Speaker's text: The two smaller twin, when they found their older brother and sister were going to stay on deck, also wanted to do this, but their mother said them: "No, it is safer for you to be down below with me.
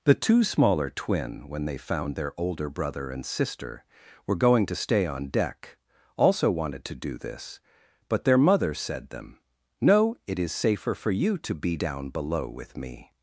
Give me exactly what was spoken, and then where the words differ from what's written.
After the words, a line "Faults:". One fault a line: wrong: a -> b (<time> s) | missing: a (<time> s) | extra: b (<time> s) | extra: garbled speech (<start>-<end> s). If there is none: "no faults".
The two smaller twin, when they found their older brother and sister were going to stay on deck, also wanted to do this, but their mother said them: "No, it is safer for you to be down below with me.
Faults:
no faults